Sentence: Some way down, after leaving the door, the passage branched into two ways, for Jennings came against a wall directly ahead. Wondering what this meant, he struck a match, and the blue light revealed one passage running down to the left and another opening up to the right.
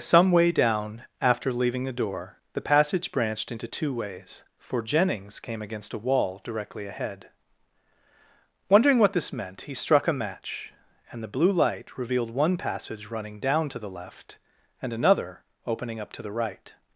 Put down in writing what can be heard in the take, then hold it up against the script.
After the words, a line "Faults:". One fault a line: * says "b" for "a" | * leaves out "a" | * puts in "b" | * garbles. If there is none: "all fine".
Some way down, after leaving the door, the passage branched into two ways, for Jennings came against a wall directly ahead. Wondering what this meant, he struck a match, and the blue light revealed one passage running down to the left and another opening up to the right.
Faults:
all fine